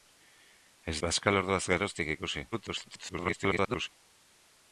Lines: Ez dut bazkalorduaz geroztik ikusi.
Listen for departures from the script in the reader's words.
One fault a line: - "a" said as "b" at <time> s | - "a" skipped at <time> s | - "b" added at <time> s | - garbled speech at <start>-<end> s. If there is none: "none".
- "dut" skipped at 0.9 s
- garbled speech at 2.5-3.9 s